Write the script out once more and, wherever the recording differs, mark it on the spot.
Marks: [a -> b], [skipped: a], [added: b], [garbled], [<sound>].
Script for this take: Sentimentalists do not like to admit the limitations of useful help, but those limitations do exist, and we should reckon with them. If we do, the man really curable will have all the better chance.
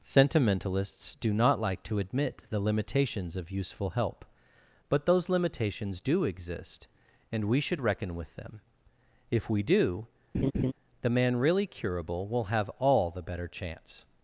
Sentimentalists do not like to admit the limitations of useful help, but those limitations do exist, and we should reckon with them. If we do, [laugh] the man really curable will have all the better chance.